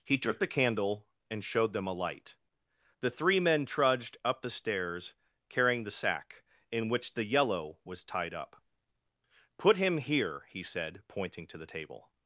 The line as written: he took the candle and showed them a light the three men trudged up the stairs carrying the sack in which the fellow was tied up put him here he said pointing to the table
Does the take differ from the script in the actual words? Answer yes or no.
yes